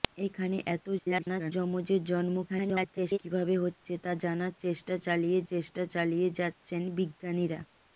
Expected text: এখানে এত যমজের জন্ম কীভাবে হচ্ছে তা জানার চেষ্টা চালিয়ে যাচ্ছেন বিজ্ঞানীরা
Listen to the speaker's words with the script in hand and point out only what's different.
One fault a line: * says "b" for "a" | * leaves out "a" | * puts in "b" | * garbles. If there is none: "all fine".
* garbles
* garbles
* puts in "চেষ্টা চালিয়ে"